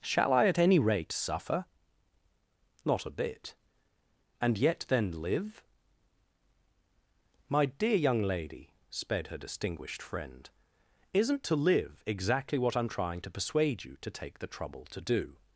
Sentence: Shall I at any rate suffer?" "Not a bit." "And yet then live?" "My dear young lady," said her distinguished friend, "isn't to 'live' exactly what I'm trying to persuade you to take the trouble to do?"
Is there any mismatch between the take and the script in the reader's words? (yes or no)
yes